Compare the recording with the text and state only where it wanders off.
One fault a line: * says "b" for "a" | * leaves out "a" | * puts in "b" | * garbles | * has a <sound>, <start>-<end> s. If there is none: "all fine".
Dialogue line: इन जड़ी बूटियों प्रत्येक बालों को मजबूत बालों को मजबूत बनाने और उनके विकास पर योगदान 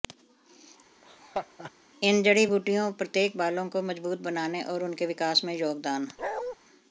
* has a laugh, 1.0-1.7 s
* leaves out "बालों को मजबूत"
* says "में" for "पर"
* has a bark, 6.2-6.6 s